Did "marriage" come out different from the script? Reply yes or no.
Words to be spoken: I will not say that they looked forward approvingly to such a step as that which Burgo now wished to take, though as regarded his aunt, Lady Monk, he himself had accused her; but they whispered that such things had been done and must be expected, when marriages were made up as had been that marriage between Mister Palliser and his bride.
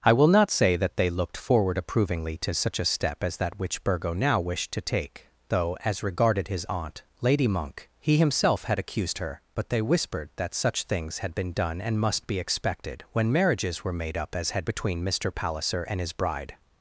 yes